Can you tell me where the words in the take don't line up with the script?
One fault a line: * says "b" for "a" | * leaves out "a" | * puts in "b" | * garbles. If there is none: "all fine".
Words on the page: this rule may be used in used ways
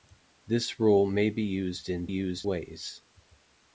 all fine